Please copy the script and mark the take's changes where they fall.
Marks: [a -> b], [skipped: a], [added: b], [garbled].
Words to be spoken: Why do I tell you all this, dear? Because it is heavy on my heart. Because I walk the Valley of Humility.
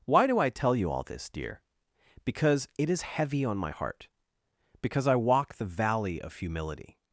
Why do I tell you all this, dear? Because it is heavy on my heart. Because I walk the Valley of Humility.